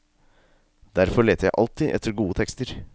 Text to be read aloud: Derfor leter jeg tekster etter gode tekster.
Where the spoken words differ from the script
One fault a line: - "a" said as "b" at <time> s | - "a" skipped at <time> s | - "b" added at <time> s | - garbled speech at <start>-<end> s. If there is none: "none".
- "tekster" said as "alltid" at 1.6 s